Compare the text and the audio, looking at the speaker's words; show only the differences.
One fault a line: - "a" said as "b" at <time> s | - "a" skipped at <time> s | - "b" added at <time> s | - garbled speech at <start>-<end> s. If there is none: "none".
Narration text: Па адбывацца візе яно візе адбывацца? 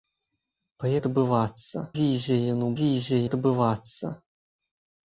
none